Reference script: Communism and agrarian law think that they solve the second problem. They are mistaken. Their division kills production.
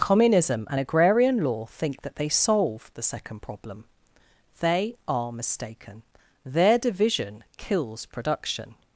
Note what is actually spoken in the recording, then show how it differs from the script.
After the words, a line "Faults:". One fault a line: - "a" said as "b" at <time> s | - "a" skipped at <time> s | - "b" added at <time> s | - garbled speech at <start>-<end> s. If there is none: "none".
Communism and agrarian law think that they solve the second problem. They are mistaken. Their division kills production.
Faults:
none